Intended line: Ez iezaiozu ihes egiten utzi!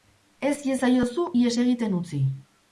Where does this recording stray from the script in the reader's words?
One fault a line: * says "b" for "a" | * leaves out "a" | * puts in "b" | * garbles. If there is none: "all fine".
all fine